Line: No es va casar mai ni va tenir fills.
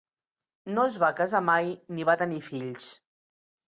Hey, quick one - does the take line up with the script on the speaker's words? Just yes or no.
yes